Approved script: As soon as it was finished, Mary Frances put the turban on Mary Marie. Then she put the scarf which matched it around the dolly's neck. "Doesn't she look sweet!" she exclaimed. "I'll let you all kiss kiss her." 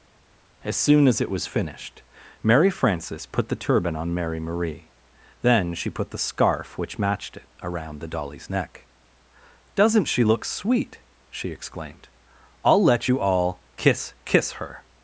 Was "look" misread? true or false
false